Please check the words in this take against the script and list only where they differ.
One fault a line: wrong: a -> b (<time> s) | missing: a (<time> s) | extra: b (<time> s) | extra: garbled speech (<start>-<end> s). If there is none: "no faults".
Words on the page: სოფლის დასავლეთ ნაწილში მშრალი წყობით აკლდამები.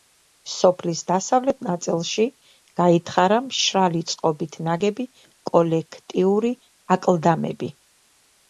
extra: გაითხარა (2.8 s)
extra: ნაგები კოლექტიური (4.7 s)